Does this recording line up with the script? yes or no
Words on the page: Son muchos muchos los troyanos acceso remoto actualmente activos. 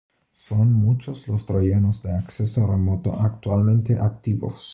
no